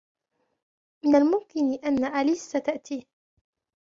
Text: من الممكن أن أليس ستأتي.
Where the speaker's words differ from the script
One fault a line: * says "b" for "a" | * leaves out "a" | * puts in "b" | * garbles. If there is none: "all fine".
all fine